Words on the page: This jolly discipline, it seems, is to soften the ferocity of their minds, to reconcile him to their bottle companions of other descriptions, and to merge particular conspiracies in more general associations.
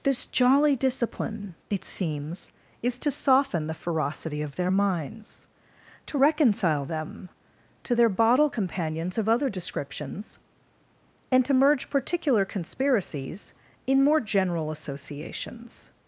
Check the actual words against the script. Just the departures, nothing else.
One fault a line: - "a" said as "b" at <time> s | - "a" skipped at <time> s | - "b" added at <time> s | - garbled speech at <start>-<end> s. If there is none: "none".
- "him" said as "them" at 6.8 s